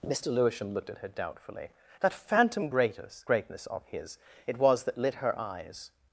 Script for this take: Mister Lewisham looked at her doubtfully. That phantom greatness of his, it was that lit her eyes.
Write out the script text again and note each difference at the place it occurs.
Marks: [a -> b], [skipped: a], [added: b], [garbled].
Mister Lewisham looked at her doubtfully. That phantom greatness [added: greatness] of his, it was that lit her eyes.